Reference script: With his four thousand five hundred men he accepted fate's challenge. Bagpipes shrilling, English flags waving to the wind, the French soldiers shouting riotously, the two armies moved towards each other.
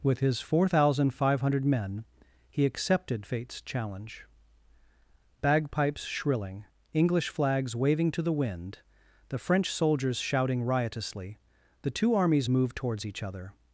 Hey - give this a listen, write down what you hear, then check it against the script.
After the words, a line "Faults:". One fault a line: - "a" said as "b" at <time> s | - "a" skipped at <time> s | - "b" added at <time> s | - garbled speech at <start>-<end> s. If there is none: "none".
With his four thousand five hundred men he accepted fate's challenge. Bagpipes shrilling, English flags waving to the wind, the French soldiers shouting riotously, the two armies moved towards each other.
Faults:
none